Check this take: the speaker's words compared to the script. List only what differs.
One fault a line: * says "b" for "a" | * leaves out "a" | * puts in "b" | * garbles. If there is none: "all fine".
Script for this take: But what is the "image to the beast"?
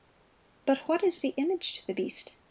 all fine